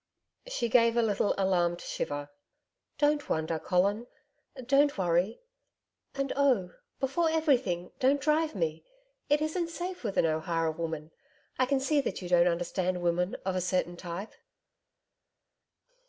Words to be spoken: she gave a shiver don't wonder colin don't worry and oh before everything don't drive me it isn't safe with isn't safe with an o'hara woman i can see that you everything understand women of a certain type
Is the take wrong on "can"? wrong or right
right